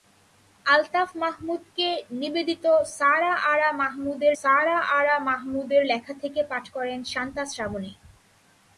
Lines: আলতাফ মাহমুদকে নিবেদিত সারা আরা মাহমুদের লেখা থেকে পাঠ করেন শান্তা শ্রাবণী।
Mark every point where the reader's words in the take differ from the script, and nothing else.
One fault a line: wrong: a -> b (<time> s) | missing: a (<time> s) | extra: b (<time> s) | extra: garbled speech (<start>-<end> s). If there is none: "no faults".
extra: সারা আরা মাহমুদের (4.4 s)